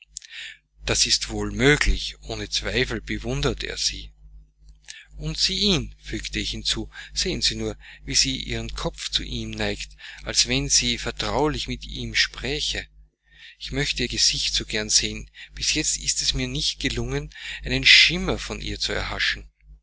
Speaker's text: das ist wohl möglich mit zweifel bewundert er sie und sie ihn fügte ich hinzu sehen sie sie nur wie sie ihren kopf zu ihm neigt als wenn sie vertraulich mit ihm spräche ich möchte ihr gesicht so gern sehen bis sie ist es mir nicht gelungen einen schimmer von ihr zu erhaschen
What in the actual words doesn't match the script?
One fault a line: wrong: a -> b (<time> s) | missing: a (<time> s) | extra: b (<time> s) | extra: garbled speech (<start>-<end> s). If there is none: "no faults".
wrong: mit -> ohne (2.2 s)
missing: sie (7.5 s)
wrong: sie -> jetzt (15.7 s)